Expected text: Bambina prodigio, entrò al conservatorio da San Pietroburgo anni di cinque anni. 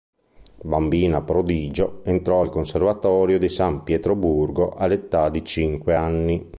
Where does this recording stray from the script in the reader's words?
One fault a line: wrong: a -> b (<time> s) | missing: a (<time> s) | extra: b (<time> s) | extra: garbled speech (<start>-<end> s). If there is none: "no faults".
wrong: da -> di (3.4 s)
wrong: anni -> all'età (4.7 s)